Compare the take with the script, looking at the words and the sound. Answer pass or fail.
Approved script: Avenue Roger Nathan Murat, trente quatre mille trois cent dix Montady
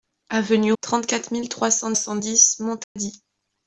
fail